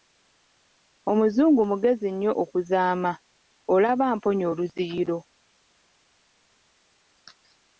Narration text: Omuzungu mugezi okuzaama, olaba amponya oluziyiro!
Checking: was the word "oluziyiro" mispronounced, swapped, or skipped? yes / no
no